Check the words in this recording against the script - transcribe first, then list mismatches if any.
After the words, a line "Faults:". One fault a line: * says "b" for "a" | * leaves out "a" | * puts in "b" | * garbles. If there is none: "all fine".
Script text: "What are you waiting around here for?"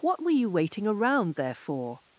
"What were you waiting around there for?"
Faults:
* says "were" for "are"
* says "there" for "here"